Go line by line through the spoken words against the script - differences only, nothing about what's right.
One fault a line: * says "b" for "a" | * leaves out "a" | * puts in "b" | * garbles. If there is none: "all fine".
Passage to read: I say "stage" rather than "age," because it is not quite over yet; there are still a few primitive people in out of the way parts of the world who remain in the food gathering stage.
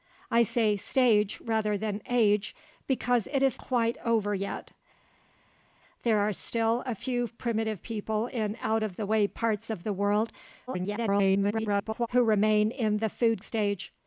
* leaves out "not"
* garbles
* leaves out "gathering"